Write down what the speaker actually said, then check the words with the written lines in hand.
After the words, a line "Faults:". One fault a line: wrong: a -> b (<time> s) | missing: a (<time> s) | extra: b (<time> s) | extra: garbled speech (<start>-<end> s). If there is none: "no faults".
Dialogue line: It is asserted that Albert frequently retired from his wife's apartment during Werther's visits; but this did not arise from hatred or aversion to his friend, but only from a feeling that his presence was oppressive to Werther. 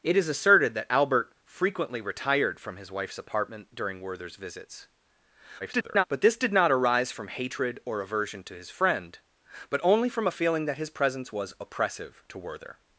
It is asserted that Albert frequently retired from his wife's apartment during Werther's visits; [garbled] but this did not arise from hatred or aversion to his friend, but only from a feeling that his presence was oppressive to Werther.
Faults:
extra: garbled speech (5.6-6.0 s)